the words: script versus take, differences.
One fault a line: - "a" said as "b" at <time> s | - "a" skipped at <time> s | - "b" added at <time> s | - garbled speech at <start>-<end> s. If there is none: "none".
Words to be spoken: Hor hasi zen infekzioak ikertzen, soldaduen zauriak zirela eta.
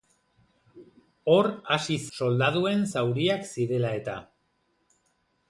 - "zen infekzioak ikertzen" skipped at 2.0 s